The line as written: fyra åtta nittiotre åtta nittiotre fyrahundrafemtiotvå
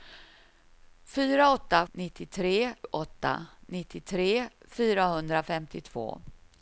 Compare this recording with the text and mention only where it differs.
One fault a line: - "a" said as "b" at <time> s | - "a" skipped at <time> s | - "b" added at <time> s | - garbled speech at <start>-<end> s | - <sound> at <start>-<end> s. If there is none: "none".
none